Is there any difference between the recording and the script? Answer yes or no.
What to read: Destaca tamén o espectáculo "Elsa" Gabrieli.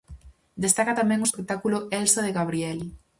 yes